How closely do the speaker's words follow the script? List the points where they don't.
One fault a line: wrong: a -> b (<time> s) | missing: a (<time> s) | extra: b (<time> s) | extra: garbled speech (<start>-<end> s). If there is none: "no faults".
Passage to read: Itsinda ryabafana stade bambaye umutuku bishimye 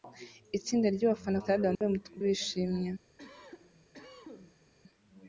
no faults